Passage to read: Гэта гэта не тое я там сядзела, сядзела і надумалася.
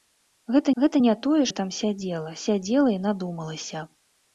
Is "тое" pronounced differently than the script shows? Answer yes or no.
no